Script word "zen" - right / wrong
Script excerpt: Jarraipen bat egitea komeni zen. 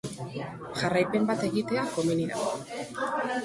wrong